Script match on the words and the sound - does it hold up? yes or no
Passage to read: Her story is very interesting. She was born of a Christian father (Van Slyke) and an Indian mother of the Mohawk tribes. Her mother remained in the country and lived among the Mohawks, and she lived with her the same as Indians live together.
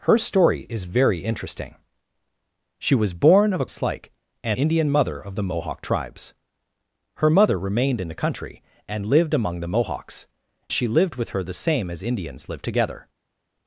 no